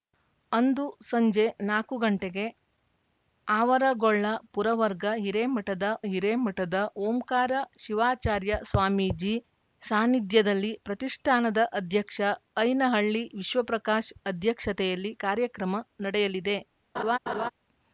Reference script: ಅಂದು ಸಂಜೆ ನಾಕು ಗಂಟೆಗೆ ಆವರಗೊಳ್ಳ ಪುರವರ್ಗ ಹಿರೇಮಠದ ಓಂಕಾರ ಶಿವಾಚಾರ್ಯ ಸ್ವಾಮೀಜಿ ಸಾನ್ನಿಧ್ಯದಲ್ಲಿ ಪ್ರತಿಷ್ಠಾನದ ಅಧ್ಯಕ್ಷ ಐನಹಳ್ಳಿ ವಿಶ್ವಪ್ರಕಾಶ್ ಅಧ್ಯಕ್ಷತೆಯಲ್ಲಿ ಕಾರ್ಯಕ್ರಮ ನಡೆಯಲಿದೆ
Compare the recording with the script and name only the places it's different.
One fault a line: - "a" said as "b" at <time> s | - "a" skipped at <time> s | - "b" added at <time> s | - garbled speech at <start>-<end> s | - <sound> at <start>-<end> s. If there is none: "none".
- "ಹಿರೇಮಠದ" added at 6.1 s
- laugh at 17.0-17.5 s